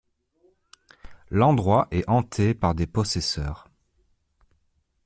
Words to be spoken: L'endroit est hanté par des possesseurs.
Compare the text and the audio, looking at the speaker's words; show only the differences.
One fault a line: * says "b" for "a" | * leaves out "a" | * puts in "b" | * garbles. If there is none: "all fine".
all fine